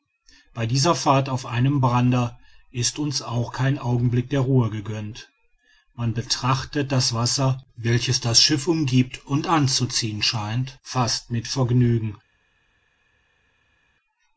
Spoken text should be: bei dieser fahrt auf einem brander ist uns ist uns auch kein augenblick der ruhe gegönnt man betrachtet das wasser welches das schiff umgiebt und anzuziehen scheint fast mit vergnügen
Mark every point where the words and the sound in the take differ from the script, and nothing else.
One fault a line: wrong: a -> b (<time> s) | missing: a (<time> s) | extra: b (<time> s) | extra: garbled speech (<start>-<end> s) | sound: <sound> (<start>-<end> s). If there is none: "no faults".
missing: ist uns (3.2 s)